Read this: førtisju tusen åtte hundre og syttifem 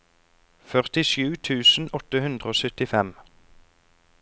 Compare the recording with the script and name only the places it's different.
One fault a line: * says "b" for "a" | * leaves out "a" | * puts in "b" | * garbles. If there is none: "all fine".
all fine